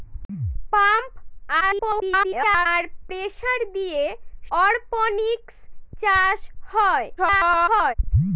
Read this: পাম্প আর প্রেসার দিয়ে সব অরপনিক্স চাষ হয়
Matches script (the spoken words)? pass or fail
fail